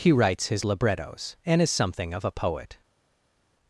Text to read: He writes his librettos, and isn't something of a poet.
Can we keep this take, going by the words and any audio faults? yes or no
no